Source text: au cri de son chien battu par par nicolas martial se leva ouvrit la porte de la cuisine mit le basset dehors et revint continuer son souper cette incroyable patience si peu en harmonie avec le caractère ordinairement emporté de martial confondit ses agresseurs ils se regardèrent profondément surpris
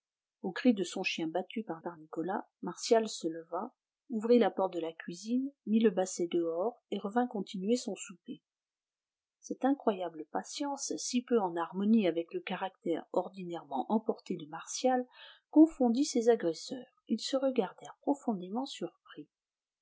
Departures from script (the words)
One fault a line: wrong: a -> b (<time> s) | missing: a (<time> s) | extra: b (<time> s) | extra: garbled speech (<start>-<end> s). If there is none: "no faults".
no faults